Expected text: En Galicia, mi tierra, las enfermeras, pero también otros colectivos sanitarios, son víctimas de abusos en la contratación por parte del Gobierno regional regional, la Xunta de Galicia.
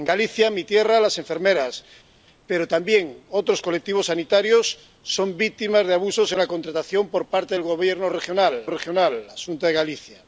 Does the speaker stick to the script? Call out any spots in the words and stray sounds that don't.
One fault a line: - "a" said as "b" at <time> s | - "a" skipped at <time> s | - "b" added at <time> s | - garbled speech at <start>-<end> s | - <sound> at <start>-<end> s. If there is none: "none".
none